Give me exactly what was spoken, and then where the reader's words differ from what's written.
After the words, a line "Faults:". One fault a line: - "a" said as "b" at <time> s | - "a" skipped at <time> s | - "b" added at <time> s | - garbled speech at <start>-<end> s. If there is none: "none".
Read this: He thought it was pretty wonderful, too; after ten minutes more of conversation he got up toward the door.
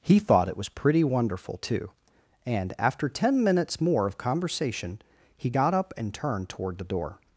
He thought it was pretty wonderful, too; and after ten minutes more of conversation he got up and turned toward the door.
Faults:
- "and" added at 2.4 s
- "and turned" added at 6.0 s